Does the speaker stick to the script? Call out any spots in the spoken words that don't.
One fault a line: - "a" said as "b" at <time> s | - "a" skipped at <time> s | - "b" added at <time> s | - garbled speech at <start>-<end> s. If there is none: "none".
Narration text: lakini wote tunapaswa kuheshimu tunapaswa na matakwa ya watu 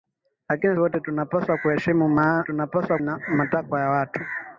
none